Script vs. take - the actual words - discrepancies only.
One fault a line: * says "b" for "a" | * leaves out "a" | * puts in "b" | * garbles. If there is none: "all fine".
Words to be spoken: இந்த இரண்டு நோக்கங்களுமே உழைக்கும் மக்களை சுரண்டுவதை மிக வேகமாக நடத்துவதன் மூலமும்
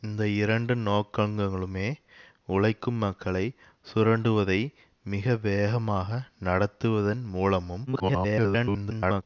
* garbles